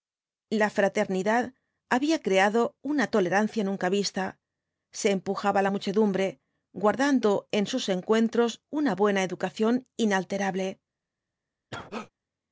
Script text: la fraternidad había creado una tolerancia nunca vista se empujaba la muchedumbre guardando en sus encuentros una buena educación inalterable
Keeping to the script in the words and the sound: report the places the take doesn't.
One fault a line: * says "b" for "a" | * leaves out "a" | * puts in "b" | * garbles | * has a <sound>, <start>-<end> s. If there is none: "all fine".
* has a cough, 11.7-12.1 s